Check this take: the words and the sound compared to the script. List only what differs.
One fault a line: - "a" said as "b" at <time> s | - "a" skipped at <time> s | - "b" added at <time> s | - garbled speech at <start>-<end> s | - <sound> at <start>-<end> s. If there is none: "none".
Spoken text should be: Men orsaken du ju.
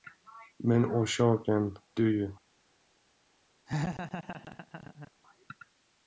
- laugh at 3.7-5.1 s